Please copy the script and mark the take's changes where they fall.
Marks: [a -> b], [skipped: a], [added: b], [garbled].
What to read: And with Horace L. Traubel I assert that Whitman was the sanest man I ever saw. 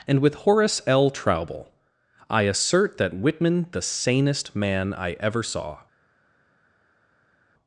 And with Horace L. Traubel I assert that Whitman [skipped: was] the sanest man I ever saw.